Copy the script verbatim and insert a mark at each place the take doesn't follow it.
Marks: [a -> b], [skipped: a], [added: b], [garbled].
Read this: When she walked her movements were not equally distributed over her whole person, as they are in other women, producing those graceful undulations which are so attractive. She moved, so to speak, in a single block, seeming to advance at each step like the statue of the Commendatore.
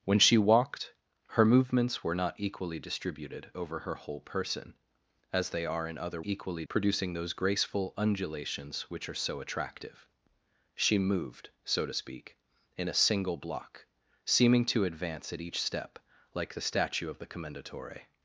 When she walked her movements were not equally distributed over her whole person, as they are in other [women, -> equally] producing those graceful undulations which are so attractive. She moved, so to speak, in a single block, seeming to advance at each step like the statue of the Commendatore.